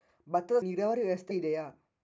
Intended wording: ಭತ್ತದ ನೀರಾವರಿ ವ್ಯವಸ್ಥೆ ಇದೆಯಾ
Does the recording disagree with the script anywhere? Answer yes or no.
no